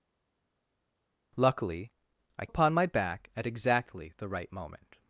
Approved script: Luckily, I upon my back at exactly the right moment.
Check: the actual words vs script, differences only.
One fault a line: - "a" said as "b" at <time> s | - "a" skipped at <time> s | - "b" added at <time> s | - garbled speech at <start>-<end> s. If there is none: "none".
none